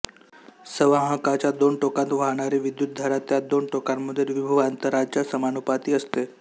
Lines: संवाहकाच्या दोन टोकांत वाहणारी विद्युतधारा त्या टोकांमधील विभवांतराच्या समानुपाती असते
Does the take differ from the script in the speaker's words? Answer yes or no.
yes